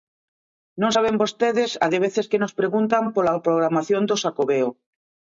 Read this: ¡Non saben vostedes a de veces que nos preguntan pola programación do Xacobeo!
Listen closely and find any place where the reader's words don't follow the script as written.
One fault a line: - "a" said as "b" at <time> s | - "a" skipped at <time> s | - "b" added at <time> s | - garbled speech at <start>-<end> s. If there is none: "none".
none